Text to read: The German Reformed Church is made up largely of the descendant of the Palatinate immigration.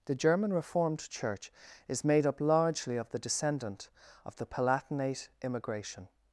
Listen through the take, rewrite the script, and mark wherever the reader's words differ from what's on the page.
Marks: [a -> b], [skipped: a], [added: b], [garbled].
The German Reformed Church is made up largely of the descendant of the Palatinate immigration.